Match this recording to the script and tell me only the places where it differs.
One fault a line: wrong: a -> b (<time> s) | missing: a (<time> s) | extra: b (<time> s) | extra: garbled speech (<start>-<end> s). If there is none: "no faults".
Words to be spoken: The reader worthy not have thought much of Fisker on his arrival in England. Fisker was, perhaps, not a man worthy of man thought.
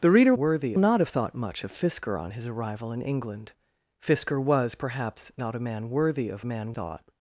no faults